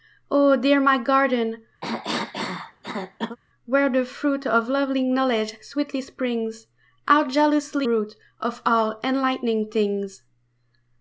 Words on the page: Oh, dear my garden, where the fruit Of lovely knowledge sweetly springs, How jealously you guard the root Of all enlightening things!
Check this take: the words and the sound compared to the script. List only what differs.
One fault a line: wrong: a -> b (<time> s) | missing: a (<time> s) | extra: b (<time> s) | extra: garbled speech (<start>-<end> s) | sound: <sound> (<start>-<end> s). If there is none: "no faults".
sound: cough (1.8-3.4 s)
missing: you guard the (7.9 s)